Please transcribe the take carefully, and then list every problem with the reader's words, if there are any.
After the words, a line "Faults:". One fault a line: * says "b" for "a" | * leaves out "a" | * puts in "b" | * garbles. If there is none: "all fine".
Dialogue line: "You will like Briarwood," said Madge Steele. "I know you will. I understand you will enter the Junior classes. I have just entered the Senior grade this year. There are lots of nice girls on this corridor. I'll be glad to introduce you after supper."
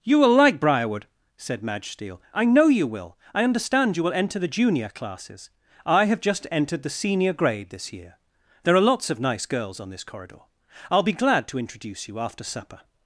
"You will like Briarwood," said Madge Steele. "I know you will. I understand you will enter the Junior classes. I have just entered the Senior grade this year. There are lots of nice girls on this corridor. I'll be glad to introduce you after supper."
Faults:
all fine